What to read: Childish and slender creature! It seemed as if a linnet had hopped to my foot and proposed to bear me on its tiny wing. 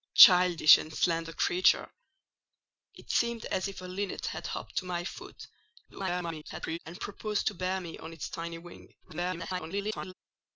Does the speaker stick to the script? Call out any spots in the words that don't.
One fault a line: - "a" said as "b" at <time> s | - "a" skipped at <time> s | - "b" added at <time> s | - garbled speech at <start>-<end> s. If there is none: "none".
- garbled speech at 5.9-6.8 s
- garbled speech at 9.0-10.1 s